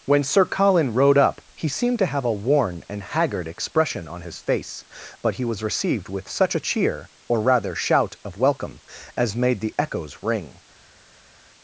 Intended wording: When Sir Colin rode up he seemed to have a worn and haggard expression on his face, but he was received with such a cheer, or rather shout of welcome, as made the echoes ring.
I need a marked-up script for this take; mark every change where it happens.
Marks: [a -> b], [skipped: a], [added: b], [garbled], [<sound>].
When Sir Colin rode up he seemed to have a worn and haggard expression on his face, but he was received with such a cheer, or rather shout of welcome, as made the echoes ring.